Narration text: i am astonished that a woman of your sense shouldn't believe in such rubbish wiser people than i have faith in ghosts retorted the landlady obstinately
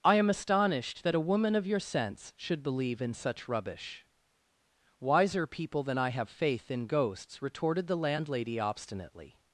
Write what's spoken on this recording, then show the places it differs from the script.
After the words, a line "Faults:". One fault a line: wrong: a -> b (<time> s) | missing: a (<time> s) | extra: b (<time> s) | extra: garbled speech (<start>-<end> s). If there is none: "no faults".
i am astonished that a woman of your sense should believe in such rubbish wiser people than i have faith in ghosts retorted the landlady obstinately
Faults:
wrong: shouldn't -> should (2.4 s)